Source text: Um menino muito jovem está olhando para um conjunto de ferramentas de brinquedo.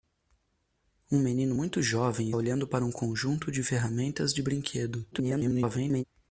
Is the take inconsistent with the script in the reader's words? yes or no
yes